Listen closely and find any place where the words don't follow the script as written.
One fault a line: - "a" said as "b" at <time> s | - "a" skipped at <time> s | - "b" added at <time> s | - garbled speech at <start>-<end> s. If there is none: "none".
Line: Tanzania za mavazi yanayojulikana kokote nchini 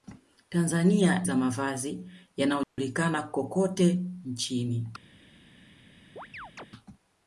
none